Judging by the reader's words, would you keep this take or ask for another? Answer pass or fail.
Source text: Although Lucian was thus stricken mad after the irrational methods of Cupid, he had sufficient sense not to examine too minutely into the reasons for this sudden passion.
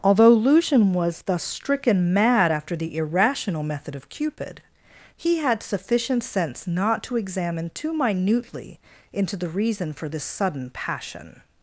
fail